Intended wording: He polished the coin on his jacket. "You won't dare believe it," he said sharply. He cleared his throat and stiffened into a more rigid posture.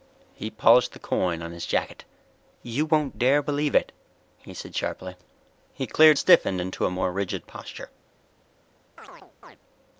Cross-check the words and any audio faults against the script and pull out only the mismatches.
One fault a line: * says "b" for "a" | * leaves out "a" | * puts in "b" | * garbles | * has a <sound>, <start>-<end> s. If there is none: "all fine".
* leaves out "his throat and"
* has a chirp, 9.0-9.6 s